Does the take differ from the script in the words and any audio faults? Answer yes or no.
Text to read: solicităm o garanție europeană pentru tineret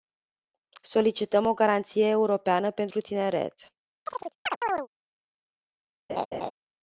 yes